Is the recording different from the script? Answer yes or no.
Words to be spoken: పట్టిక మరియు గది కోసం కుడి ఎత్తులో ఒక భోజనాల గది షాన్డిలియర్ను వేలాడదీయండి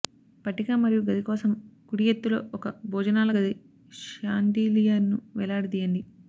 no